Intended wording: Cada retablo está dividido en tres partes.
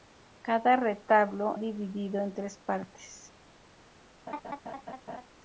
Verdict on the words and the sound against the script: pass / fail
fail